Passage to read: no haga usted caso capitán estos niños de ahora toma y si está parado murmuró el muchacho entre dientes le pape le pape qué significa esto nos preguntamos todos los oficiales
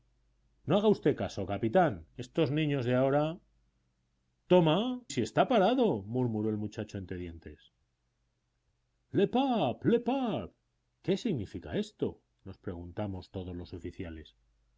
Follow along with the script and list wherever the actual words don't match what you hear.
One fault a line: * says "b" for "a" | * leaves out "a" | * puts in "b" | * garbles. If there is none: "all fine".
* leaves out "y"